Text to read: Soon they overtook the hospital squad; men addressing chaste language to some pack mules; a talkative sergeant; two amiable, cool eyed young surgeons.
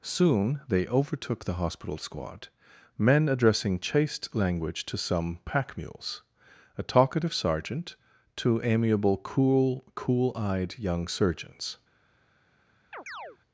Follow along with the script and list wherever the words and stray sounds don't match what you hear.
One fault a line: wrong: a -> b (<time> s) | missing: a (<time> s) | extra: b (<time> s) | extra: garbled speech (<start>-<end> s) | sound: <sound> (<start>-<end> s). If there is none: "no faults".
extra: cool (9.9 s)
sound: chirp (12.9-13.4 s)